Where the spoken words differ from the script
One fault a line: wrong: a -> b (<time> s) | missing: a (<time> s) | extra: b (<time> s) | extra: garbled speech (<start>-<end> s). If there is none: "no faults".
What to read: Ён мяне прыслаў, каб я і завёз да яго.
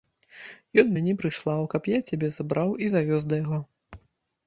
extra: цябе забраў (2.1 s)